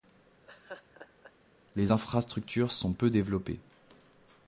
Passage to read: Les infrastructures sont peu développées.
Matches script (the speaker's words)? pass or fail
pass